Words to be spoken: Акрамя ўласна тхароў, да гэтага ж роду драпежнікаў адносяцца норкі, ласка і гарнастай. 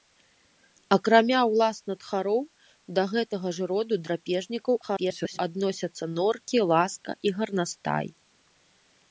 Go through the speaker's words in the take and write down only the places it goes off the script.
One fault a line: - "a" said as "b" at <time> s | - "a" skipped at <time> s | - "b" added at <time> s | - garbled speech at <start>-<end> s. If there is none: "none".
- garbled speech at 4.8-5.4 s